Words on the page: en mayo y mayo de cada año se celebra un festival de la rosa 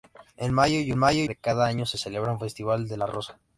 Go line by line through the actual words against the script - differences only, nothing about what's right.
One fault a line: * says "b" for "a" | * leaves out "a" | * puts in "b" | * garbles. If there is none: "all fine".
all fine